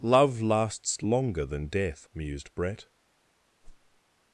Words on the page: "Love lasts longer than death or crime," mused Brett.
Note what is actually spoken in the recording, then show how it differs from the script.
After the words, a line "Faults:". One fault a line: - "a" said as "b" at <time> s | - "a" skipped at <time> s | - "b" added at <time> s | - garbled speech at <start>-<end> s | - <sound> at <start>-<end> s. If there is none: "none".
"Love lasts longer than death," mused Brett.
Faults:
- "or crime" skipped at 2.1 s
- whoosh at 3.6-4.0 s